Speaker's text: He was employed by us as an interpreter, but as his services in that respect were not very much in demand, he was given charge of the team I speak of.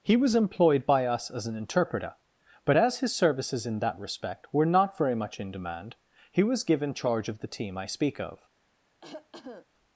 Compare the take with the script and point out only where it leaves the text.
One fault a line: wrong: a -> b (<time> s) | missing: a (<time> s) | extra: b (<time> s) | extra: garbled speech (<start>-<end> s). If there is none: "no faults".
no faults